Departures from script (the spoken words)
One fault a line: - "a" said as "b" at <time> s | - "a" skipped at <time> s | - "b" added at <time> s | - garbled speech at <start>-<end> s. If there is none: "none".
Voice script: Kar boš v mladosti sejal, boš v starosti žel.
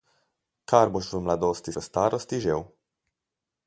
- "sejal boš" skipped at 1.7 s